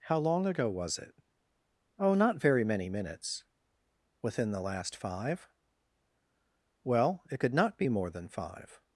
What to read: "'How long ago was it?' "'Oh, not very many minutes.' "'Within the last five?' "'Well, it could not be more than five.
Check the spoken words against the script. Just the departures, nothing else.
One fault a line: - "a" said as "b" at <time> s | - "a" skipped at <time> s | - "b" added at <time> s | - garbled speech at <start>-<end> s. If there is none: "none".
none